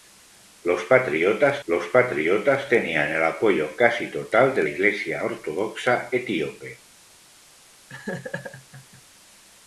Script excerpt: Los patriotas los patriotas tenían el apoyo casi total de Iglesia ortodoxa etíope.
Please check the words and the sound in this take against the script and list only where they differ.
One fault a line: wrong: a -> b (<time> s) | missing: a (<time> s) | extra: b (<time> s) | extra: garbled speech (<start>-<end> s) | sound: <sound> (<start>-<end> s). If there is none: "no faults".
sound: laugh (7.9-9.0 s)